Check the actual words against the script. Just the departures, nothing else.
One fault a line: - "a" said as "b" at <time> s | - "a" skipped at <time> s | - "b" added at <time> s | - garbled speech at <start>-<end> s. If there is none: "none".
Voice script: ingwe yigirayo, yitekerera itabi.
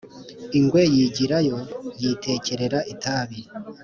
none